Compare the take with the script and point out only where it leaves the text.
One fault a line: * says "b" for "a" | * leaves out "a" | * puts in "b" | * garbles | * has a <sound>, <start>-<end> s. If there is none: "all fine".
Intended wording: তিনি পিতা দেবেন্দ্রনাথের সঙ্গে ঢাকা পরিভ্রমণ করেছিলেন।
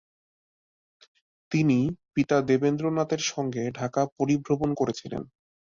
all fine